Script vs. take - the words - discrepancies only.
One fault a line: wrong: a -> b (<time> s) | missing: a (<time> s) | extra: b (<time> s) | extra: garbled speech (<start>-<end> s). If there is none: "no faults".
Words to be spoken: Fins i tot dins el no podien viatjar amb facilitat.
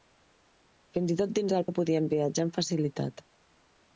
no faults